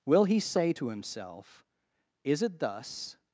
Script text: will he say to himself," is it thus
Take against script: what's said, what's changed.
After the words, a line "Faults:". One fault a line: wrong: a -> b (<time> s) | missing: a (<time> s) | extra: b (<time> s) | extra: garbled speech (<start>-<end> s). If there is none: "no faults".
will he say to himself," is it thus
Faults:
no faults